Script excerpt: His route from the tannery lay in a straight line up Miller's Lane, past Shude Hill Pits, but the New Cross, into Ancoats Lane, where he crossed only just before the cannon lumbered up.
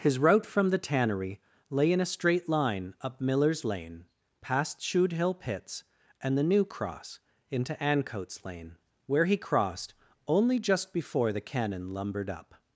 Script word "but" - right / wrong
wrong